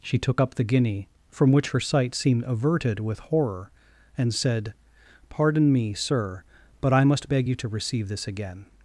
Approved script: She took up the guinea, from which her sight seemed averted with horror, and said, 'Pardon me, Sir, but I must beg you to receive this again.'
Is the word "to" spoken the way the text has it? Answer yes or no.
yes